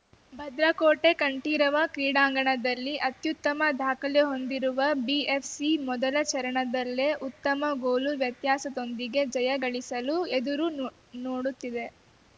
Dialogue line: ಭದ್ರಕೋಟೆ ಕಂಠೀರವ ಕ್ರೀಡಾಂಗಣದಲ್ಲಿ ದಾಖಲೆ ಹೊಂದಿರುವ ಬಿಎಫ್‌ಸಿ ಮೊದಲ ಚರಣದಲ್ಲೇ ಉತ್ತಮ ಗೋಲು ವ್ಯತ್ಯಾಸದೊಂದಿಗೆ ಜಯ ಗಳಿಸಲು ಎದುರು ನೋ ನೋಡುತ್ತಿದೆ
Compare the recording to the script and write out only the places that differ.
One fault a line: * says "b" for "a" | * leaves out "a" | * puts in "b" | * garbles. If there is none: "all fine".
* puts in "ಅತ್ಯುತ್ತಮ"